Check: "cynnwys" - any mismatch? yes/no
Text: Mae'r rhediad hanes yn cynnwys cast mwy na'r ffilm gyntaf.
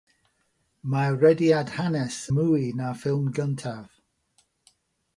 yes